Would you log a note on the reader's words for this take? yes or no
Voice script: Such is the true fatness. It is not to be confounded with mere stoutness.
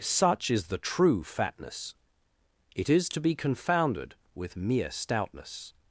yes